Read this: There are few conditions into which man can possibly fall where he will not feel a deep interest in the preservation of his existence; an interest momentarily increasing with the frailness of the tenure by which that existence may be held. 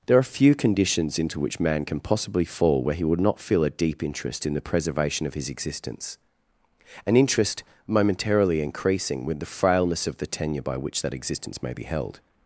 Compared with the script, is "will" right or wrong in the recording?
wrong